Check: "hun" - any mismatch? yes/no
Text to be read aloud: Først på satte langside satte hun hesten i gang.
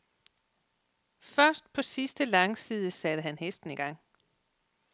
yes